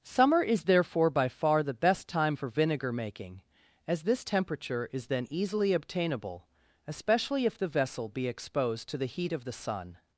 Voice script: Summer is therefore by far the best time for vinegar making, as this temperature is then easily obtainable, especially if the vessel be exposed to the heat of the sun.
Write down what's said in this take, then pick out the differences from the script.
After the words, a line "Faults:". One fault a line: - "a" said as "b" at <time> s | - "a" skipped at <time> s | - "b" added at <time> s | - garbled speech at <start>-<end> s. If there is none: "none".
Summer is therefore by far the best time for vinegar making, as this temperature is then easily obtainable, especially if the vessel be exposed to the heat of the sun.
Faults:
none